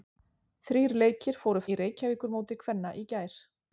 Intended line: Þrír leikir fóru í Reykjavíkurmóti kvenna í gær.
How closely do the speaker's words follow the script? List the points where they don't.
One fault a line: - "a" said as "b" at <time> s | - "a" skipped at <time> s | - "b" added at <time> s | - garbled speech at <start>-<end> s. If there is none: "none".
none